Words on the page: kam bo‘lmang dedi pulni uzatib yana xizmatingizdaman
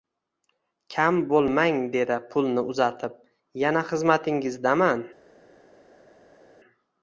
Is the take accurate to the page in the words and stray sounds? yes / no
yes